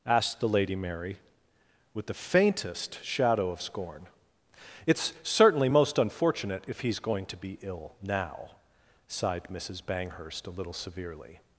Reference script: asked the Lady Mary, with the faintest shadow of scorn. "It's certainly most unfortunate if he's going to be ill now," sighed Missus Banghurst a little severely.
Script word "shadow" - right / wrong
right